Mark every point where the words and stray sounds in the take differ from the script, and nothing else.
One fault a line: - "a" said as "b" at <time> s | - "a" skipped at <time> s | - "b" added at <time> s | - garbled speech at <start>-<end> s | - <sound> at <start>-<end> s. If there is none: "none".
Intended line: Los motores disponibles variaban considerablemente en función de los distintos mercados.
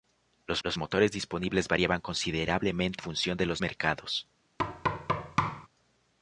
- "los" added at 0.6 s
- "en" skipped at 3.0 s
- "distintos" skipped at 3.6 s
- thud at 4.6-5.7 s